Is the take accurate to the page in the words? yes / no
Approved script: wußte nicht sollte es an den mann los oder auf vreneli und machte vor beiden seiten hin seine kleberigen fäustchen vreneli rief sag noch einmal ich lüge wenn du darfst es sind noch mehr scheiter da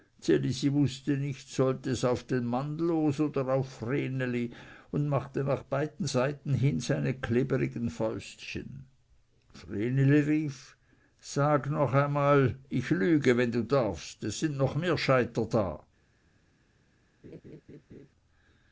no